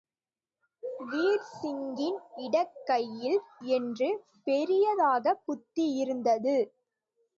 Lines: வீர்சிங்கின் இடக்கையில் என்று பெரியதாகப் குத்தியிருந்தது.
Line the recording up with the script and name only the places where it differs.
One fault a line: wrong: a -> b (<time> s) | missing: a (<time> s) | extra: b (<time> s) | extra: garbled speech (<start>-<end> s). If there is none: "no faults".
no faults